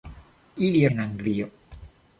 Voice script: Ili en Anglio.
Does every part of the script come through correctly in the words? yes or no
yes